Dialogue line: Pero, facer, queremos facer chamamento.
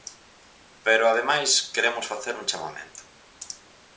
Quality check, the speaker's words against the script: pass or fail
fail